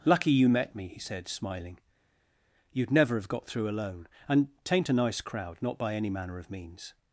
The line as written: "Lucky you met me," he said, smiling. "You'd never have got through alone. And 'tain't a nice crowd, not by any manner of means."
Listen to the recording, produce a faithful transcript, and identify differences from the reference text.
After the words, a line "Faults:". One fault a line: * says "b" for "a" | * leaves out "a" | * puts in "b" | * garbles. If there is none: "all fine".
"Lucky you met me," he said, smiling. "You'd never have got through alone. And 'tain't a nice crowd, not by any manner of means."
Faults:
all fine